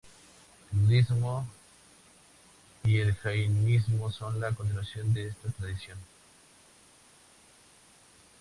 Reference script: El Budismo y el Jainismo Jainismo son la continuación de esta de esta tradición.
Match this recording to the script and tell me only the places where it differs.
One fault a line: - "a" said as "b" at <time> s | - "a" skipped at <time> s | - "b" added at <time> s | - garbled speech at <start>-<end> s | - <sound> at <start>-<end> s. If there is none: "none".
- "Jainismo" skipped at 4.1 s
- "de esta" skipped at 5.5 s